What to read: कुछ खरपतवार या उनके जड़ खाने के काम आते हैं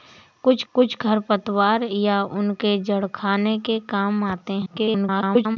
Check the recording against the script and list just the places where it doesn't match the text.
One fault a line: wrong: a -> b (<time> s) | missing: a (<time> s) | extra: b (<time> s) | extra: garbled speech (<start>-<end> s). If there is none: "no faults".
extra: कुछ (0.7 s)
extra: garbled speech (4.7-5.6 s)